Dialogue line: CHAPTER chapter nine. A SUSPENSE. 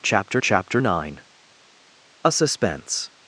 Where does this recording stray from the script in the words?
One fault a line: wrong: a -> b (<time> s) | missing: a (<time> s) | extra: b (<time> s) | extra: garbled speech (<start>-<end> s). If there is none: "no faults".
no faults